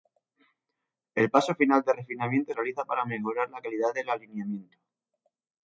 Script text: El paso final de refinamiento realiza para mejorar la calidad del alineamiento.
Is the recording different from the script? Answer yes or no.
no